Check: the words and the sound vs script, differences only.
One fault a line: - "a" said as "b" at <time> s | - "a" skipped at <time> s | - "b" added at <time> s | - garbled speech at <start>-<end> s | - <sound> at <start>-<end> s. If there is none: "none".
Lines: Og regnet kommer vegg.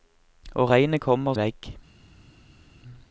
none